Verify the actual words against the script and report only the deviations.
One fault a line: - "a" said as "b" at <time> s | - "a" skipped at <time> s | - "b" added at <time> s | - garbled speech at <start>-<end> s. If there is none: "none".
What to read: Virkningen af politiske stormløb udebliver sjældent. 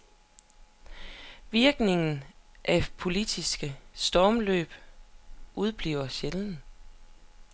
none